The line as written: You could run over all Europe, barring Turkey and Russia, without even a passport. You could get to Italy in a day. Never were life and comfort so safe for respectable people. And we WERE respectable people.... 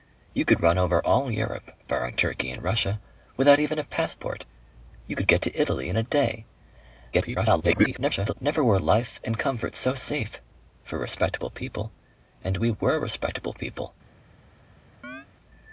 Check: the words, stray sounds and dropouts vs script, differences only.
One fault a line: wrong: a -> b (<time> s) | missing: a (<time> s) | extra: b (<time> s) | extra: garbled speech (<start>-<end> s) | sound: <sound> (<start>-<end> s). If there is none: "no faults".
extra: garbled speech (7.1-8.3 s)
sound: chirp (15.0-15.3 s)